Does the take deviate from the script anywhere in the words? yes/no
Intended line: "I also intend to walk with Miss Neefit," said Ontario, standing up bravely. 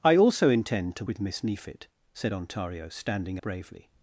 yes